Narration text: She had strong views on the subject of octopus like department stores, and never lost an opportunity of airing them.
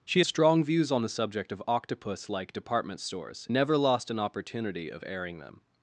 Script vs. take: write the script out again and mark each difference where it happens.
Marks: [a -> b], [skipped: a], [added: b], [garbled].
She [skipped: had] strong views on the subject of octopus like department stores, [skipped: and] never lost an opportunity of airing them.